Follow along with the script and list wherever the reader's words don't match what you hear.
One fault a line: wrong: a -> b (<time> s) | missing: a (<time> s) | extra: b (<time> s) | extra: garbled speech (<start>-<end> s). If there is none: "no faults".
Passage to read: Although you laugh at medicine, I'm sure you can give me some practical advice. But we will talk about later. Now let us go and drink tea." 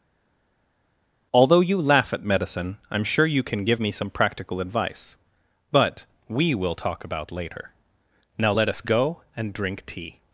no faults